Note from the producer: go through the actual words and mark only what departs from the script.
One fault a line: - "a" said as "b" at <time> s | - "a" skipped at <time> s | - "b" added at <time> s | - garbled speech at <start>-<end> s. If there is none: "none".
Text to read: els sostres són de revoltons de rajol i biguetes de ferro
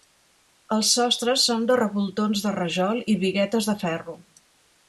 none